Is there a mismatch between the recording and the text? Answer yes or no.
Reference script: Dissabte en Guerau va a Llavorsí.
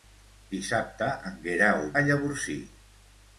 yes